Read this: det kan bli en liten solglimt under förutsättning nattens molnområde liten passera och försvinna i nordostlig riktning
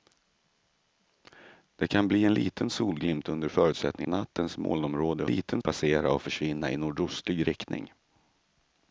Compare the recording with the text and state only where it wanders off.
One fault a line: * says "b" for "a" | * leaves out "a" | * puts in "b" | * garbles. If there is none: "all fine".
all fine